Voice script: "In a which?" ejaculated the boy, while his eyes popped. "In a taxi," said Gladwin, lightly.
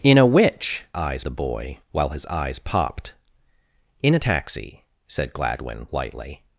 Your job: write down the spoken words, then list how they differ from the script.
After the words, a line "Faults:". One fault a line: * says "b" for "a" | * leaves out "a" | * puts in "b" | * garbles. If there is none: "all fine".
"In a which?" eyes the boy, while his eyes popped. "In a taxi," said Gladwin, lightly.
Faults:
* says "eyes" for "ejaculated"